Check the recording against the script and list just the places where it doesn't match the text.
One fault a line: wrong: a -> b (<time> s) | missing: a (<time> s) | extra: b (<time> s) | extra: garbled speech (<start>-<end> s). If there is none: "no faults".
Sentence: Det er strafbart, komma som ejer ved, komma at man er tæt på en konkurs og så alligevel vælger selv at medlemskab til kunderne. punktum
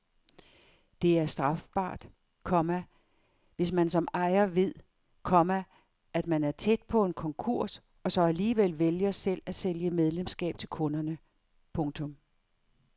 extra: hvis man (3.5 s)
extra: sælge (9.6 s)